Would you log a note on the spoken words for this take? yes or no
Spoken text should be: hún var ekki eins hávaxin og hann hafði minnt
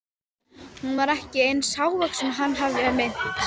no